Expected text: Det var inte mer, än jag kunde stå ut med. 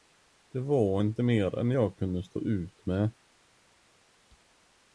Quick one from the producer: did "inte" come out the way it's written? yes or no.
yes